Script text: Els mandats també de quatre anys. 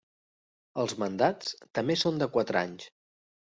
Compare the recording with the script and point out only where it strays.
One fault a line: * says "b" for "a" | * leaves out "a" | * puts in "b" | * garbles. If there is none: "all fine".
* puts in "són"